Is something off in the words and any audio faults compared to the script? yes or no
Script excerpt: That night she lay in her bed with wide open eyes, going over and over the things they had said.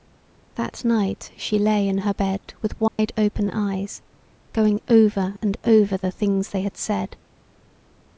yes